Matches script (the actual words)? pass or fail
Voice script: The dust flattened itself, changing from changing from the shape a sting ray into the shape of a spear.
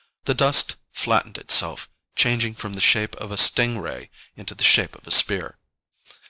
fail